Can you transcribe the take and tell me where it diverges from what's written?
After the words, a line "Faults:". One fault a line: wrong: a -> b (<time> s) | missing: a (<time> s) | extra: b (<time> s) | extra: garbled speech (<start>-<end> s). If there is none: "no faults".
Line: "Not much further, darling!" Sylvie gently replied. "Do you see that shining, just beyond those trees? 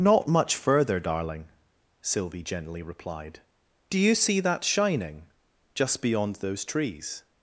"Not much further, darling!" Sylvie gently replied. "Do you see that shining, just beyond those trees?
Faults:
no faults